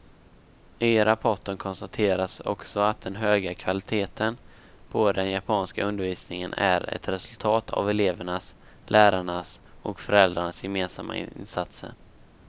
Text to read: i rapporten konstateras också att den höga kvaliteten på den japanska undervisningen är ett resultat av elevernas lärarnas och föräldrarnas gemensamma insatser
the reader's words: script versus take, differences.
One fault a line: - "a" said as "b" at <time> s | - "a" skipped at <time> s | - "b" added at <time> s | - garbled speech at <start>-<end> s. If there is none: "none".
none